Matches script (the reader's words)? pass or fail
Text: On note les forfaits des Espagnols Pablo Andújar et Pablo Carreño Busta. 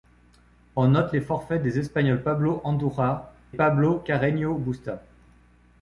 fail